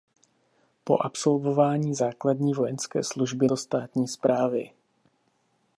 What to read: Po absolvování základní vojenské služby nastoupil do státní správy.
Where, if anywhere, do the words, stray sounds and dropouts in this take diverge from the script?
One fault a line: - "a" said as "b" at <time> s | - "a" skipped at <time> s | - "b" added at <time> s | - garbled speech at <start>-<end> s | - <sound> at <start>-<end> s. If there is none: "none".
- "nastoupil" skipped at 3.5 s